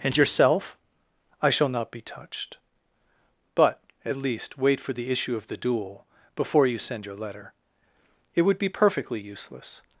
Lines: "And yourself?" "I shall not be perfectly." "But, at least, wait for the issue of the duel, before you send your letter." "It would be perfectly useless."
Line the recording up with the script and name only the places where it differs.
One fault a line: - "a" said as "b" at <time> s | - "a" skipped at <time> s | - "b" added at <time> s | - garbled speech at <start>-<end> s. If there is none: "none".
- "perfectly" said as "touched" at 2.0 s